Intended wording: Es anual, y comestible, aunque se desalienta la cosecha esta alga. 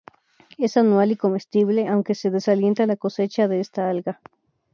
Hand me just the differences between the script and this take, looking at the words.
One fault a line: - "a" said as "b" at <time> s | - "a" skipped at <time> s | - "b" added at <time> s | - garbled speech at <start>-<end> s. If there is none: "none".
- "de" added at 3.5 s